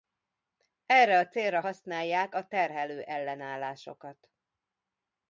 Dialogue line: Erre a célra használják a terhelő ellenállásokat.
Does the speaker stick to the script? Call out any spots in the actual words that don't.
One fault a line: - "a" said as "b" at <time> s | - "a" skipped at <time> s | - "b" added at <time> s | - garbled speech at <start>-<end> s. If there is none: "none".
none